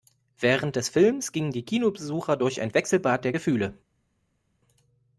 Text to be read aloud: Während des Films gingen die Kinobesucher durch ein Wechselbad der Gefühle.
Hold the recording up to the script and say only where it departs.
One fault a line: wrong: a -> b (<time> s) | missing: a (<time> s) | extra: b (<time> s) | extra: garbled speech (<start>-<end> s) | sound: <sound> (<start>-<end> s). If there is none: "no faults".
no faults